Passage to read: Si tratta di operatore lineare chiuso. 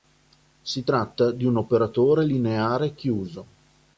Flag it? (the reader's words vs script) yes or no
yes